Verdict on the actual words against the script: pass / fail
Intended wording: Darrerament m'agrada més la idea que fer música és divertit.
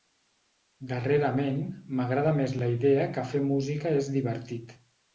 pass